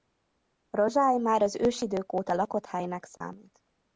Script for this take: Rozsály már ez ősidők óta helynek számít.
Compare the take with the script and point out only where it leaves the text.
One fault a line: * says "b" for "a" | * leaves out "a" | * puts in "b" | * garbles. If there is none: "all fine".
* says "az" for "ez"
* puts in "lakott"